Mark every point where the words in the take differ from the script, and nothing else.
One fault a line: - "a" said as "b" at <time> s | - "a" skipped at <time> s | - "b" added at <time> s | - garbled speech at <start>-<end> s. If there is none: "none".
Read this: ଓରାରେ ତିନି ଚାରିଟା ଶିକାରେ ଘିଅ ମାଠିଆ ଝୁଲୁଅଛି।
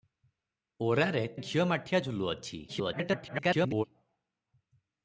- "ତିନି ଚାରିଟା ଶିକାରେ" skipped at 1.2 s
- garbled speech at 2.7-3.8 s